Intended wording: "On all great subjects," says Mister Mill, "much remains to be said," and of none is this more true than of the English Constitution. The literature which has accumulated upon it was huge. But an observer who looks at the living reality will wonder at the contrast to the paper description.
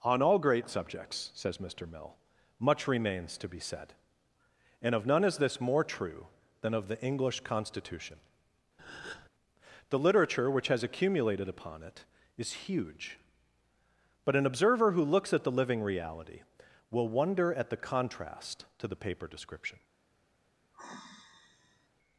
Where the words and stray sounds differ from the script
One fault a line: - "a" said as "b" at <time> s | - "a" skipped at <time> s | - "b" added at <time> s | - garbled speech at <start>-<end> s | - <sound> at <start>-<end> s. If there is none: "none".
- breath at 8.8-9.3 s
- "was" said as "is" at 12.4 s
- sigh at 20.7-21.9 s